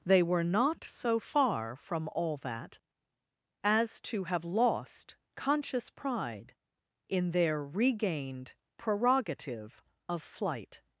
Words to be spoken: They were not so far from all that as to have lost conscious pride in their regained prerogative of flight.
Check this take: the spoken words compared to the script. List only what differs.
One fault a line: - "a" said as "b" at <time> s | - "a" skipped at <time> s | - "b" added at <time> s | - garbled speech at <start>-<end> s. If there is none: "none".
none